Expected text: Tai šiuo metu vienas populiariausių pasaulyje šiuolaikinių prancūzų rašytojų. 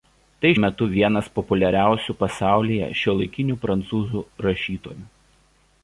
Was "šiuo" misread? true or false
true